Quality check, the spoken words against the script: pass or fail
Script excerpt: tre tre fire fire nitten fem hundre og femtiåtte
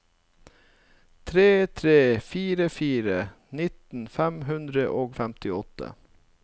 pass